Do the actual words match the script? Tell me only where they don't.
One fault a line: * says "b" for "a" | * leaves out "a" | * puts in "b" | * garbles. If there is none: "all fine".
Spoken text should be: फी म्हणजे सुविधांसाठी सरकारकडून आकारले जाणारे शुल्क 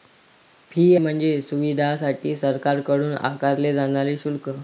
all fine